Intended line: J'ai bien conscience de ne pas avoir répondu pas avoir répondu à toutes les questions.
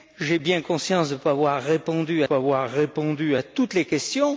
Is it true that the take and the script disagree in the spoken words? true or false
false